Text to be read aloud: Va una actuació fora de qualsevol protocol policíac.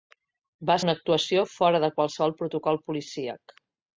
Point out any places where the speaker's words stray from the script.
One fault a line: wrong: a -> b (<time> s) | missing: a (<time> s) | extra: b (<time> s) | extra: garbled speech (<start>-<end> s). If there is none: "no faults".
no faults